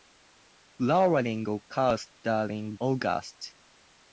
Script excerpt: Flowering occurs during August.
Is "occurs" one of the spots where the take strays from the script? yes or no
no